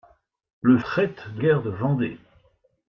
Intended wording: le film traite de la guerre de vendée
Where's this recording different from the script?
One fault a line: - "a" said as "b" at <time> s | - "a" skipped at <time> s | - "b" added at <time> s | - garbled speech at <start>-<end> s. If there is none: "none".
- "film" skipped at 0.8 s
- "la" skipped at 1.4 s